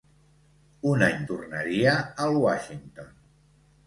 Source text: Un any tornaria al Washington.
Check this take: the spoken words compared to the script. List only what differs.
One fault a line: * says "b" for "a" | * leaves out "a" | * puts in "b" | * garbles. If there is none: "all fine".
all fine